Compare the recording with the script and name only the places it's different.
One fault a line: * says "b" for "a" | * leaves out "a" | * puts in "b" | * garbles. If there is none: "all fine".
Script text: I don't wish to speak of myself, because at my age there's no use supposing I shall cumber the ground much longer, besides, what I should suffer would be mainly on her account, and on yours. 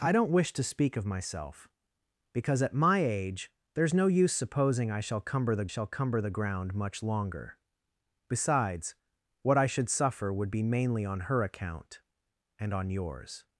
* puts in "shall cumber the"